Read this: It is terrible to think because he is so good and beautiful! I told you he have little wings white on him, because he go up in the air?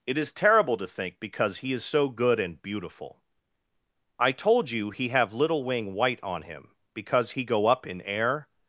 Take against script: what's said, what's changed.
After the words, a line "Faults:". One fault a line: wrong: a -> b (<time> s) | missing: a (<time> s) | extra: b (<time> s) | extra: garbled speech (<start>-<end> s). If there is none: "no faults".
It is terrible to think because he is so good and beautiful! I told you he have little wing white on him, because he go up in air?
Faults:
wrong: wings -> wing (5.6 s)
missing: the (8.0 s)